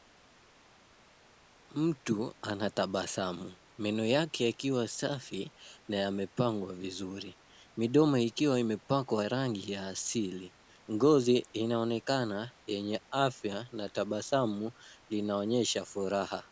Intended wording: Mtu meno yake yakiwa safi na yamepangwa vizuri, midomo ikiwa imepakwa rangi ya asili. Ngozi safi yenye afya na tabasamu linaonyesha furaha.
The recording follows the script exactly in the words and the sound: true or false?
false